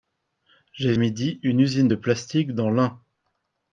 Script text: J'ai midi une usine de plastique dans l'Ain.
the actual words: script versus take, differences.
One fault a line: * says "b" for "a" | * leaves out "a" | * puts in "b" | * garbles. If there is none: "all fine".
all fine